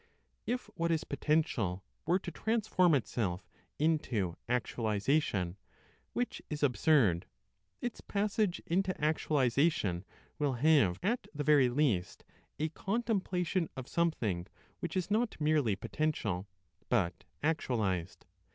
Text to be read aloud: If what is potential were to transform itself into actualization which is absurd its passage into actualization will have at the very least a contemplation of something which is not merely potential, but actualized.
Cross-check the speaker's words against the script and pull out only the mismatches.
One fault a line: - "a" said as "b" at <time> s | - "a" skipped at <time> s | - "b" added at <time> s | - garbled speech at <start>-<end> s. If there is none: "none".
none